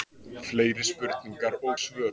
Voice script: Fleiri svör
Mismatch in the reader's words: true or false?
true